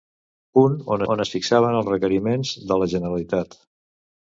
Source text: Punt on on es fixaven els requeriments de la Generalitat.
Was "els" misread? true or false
false